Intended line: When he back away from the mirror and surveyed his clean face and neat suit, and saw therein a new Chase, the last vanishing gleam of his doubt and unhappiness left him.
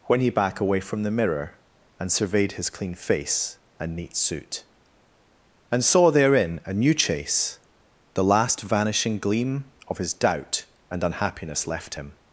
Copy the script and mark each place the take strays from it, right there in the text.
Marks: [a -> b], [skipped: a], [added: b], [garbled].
When he back away from the mirror and surveyed his clean face and neat suit, and saw therein a new Chase, the last vanishing gleam of his doubt and unhappiness left him.